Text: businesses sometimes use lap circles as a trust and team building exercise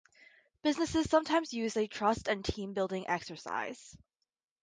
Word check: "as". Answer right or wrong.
wrong